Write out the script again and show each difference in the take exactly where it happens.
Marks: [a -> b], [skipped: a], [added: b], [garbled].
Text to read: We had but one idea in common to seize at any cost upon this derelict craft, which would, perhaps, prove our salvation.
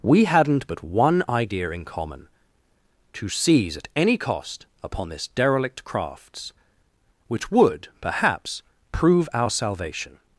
We [had -> hadn't] but one idea in common to seize at any cost upon this derelict [craft, -> crafts] which would, perhaps, prove our salvation.